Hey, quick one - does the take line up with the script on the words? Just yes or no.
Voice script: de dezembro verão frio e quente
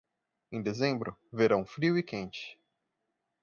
no